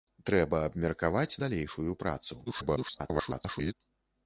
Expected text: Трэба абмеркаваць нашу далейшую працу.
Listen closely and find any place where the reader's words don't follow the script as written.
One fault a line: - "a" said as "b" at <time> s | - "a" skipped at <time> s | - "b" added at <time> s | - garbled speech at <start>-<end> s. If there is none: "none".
- "нашу" skipped at 1.4 s
- garbled speech at 2.5-3.7 s